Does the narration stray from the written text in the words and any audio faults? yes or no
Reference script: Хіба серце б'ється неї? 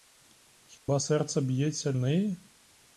yes